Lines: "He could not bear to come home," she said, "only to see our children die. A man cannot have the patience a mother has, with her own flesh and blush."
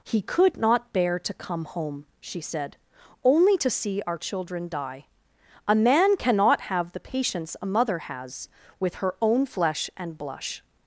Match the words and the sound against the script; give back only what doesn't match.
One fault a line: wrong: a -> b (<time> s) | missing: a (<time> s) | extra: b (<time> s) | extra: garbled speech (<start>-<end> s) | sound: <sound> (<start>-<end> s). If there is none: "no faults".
no faults